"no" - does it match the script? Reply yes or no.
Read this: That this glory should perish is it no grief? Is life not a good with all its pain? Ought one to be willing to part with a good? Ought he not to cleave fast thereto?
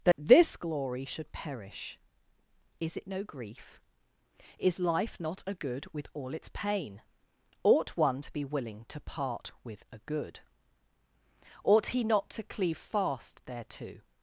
yes